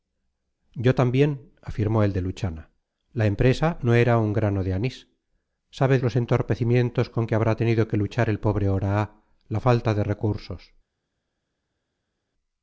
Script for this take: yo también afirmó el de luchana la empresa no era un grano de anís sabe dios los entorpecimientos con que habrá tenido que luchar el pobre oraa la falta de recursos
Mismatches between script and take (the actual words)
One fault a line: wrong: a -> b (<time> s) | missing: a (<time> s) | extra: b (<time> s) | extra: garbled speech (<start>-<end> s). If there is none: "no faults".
missing: dios (6.0 s)